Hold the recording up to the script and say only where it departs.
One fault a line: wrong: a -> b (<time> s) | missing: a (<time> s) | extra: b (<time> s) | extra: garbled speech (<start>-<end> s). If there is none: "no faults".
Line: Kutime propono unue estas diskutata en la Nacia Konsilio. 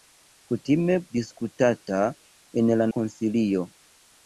missing: propono unue estas (0.9 s)
missing: Nacia (2.9 s)